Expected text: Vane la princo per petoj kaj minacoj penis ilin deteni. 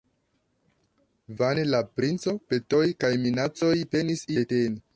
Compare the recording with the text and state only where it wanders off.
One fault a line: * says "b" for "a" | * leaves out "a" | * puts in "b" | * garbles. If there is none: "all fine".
* leaves out "per"
* leaves out "ilin"